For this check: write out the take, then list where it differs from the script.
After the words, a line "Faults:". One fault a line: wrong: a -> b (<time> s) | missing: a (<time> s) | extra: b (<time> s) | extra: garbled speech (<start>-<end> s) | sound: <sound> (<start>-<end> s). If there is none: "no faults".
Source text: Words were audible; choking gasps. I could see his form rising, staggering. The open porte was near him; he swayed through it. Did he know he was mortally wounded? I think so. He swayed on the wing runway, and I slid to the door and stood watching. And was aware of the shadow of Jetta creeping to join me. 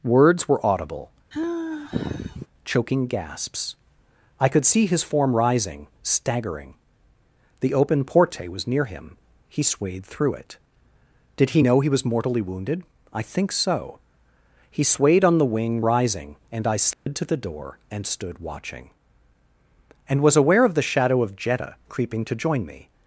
Words were audible; choking gasps. I could see his form rising, staggering. The open porte was near him; he swayed through it. Did he know he was mortally wounded? I think so. He swayed on the wing rising, and I slid to the door and stood watching. And was aware of the shadow of Jetta creeping to join me.
Faults:
sound: sigh (1.3-2.5 s)
wrong: runway -> rising (15.8 s)
sound: dropout (16.9-17.1 s)